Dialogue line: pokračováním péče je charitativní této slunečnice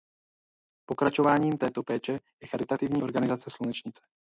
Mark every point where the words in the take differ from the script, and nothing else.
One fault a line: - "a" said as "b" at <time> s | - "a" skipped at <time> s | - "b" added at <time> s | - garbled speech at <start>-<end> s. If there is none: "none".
- "této" added at 1.6 s
- "této" said as "organizace" at 3.0 s